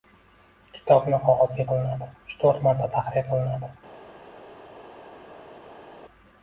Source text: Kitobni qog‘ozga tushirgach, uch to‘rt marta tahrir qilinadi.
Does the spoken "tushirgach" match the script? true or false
false